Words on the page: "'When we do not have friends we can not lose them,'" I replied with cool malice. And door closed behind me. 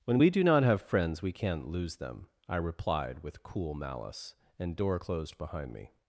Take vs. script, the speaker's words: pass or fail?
pass